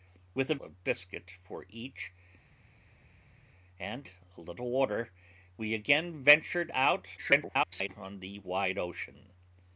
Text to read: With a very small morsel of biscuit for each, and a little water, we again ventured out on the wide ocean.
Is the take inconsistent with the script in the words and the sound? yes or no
yes